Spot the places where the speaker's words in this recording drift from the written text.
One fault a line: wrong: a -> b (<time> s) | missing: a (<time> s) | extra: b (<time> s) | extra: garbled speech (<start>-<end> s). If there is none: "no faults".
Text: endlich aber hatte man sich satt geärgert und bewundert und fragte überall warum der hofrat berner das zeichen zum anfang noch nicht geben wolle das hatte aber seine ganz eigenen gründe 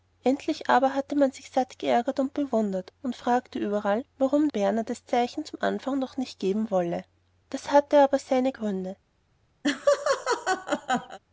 missing: der hofrat (4.5 s)
missing: ganz eigenen (8.5 s)